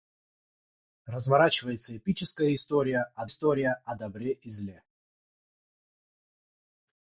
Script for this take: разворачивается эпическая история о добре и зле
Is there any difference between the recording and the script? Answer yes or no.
yes